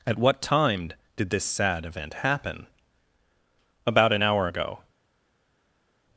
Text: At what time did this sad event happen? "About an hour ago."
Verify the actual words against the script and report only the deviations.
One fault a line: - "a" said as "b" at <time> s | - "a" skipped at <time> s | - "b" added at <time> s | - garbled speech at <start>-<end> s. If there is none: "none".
none